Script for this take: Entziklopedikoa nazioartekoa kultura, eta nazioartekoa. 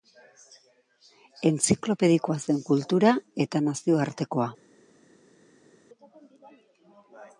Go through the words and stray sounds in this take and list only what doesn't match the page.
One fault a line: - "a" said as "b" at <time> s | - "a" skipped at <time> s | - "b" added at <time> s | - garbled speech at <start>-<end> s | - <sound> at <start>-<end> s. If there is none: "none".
- "nazioartekoa" said as "zen" at 2.5 s